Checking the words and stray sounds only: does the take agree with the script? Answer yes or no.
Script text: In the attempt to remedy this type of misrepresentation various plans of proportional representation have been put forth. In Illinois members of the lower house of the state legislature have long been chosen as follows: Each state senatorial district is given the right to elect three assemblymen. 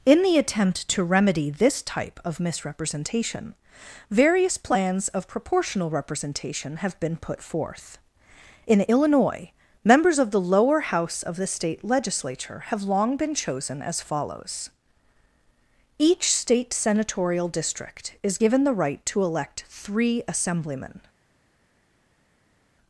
yes